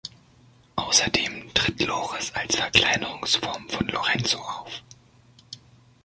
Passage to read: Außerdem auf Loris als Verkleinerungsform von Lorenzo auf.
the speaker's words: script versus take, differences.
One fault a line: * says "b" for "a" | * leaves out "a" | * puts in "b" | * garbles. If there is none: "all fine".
* says "tritt" for "auf"